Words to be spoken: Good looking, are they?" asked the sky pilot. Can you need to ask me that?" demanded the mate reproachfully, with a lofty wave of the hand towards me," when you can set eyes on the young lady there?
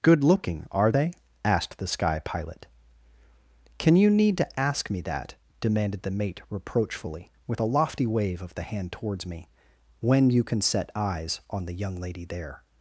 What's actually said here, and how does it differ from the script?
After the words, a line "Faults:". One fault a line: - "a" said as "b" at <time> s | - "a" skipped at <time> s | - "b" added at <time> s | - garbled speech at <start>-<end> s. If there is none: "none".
Good looking, are they?" asked the sky pilot. Can you need to ask me that?" demanded the mate reproachfully, with a lofty wave of the hand towards me," when you can set eyes on the young lady there?
Faults:
none